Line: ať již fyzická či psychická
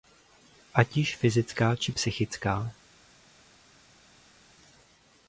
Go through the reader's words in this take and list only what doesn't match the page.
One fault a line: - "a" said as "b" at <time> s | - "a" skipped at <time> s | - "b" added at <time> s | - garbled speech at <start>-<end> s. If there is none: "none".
none